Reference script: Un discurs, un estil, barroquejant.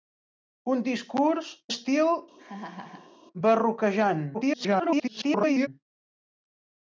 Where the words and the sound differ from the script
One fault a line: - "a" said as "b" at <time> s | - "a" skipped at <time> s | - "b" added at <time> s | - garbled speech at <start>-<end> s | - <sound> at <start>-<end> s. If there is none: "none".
- "un" skipped at 1.5 s
- laugh at 2.4-3.2 s
- garbled speech at 4.3-5.7 s